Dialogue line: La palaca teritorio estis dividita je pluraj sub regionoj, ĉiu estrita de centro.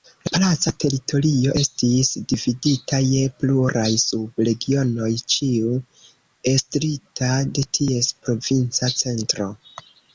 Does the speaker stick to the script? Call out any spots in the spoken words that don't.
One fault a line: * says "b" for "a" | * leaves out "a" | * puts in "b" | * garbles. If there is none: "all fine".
* puts in "ties provinca"